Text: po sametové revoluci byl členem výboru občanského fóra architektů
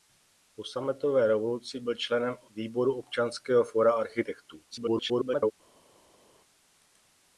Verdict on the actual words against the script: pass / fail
fail